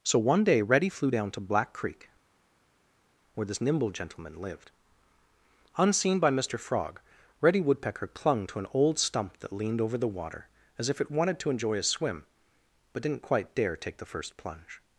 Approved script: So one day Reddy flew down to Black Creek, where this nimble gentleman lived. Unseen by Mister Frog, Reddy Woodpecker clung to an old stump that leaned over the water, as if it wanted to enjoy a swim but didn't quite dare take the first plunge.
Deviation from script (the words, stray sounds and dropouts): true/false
false